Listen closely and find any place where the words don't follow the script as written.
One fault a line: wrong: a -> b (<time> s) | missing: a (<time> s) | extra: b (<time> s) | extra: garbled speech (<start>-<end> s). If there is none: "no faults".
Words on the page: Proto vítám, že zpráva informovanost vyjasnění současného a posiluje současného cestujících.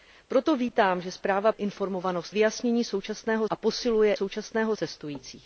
no faults